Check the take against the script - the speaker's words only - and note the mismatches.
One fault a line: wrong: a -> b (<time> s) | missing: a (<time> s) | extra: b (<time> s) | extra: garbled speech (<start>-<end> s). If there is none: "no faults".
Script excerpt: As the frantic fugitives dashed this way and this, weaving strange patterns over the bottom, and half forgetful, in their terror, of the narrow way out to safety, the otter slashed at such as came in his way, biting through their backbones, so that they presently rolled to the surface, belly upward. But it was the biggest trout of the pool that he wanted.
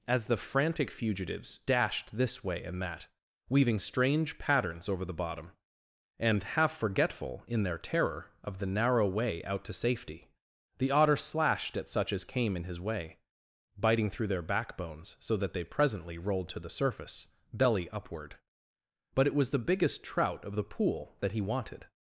wrong: this -> that (2.8 s)